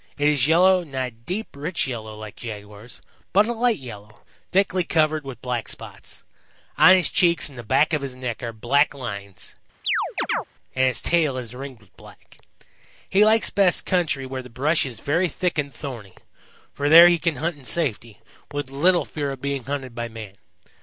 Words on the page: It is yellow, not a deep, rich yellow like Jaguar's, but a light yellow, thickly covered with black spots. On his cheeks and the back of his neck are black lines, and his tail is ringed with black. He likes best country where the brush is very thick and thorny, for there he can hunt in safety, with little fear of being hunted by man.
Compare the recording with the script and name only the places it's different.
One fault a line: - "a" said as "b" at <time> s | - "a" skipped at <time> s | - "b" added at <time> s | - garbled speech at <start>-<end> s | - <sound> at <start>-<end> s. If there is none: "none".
- chirp at 9.8-10.4 s